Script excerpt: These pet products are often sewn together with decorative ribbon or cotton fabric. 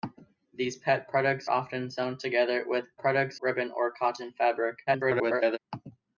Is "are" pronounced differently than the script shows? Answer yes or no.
yes